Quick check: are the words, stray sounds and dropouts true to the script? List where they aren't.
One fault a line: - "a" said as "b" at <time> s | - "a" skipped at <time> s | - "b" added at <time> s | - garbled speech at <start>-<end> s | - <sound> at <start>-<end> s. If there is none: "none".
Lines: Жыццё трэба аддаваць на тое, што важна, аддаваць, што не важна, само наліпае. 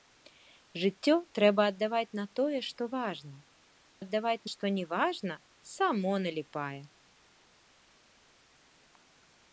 none